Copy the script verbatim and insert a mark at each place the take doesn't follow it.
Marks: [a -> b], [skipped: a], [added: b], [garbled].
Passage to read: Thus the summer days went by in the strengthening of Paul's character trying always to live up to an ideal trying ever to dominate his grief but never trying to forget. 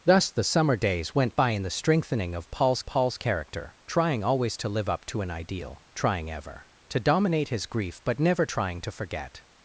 Thus the summer days went by in the strengthening of Paul's [added: Paul's] character trying always to live up to an ideal trying ever to dominate his grief but never trying to forget.